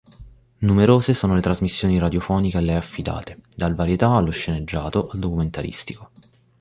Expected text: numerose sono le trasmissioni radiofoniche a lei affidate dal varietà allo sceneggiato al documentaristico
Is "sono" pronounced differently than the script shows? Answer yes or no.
no